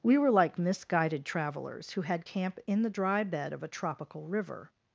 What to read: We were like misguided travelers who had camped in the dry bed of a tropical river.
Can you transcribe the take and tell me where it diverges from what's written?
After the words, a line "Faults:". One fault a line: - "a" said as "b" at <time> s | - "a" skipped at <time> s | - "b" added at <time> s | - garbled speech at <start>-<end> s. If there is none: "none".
We were like misguided travelers who had camp in the dry bed of a tropical river.
Faults:
- "camped" said as "camp" at 2.2 s